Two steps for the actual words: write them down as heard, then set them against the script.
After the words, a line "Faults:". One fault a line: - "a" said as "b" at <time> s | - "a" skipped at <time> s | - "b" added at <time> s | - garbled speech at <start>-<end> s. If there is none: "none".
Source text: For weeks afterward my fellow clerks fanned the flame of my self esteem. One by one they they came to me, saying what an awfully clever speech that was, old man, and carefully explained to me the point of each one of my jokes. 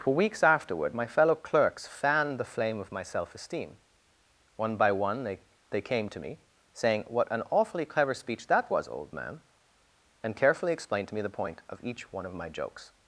For weeks afterward my fellow clerks fanned the flame of my self esteem. One by one they they came to me, saying what an awfully clever speech that was, old man, and carefully explained to me the point of each one of my jokes.
Faults:
none